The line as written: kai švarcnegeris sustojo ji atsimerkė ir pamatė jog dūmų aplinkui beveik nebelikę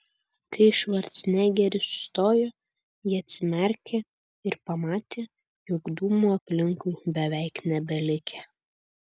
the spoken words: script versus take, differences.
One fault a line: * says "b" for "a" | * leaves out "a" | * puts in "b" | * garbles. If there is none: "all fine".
all fine